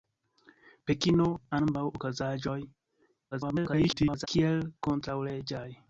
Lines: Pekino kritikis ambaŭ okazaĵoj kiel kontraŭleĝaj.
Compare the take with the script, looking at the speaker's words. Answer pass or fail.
fail